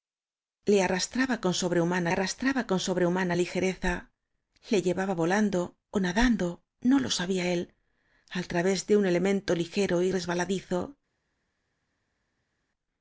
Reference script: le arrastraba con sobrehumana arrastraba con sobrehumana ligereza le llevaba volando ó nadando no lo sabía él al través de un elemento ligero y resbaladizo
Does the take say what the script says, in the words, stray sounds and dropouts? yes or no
yes